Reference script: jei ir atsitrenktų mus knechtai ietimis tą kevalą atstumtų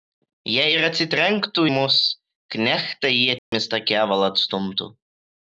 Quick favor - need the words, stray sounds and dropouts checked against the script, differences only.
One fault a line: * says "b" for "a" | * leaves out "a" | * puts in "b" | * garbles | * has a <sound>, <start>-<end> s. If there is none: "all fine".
* has a dropout, 3.4-3.5 s